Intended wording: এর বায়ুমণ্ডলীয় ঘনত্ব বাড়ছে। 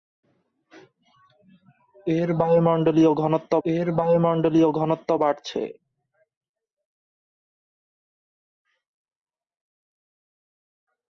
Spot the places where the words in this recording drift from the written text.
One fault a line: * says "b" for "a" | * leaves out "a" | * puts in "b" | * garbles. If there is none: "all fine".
* puts in "এর বায়ুমণ্ডলীয় ঘনত্ব"